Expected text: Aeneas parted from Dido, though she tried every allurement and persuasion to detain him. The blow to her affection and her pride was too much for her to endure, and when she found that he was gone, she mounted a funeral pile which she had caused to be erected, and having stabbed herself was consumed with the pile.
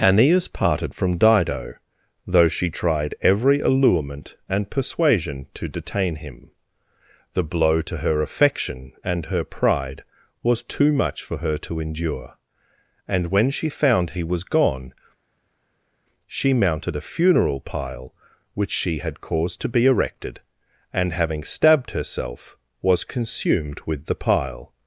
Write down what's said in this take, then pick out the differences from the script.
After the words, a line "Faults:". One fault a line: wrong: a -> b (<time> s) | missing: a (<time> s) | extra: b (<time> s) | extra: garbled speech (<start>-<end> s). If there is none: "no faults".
Aeneas parted from Dido, though she tried every allurement and persuasion to detain him. The blow to her affection and her pride was too much for her to endure, and when she found he was gone, she mounted a funeral pile which she had caused to be erected, and having stabbed herself was consumed with the pile.
Faults:
missing: that (14.1 s)